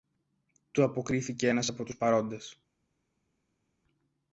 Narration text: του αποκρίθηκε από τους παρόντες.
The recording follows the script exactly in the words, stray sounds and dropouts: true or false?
false